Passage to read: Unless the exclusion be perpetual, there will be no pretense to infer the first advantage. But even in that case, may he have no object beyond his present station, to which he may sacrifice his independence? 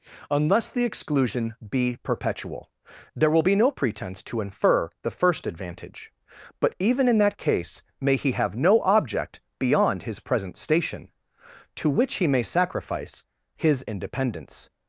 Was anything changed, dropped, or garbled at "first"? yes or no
no